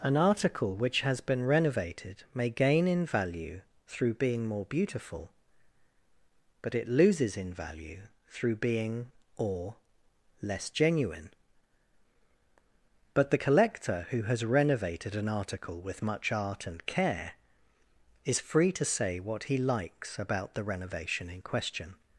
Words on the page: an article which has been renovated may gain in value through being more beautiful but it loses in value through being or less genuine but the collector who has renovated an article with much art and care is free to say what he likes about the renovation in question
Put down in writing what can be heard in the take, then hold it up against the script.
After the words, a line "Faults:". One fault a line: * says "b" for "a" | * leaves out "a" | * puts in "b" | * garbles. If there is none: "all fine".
an article which has been renovated may gain in value through being more beautiful but it loses in value through being or less genuine but the collector who has renovated an article with much art and care is free to say what he likes about the renovation in question
Faults:
all fine